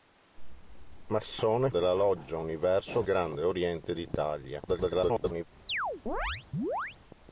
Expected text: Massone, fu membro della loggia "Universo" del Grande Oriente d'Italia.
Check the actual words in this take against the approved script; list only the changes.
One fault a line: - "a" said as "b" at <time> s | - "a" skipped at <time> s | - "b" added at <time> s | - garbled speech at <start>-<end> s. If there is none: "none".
- "fu membro" skipped at 1.7 s
- "del" skipped at 3.0 s
- garbled speech at 4.7-5.4 s